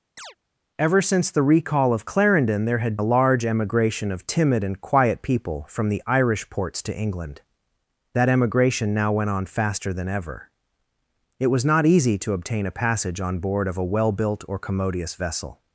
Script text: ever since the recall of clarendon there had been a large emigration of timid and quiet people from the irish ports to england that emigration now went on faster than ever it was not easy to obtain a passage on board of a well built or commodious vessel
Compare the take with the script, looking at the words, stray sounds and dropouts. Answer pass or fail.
fail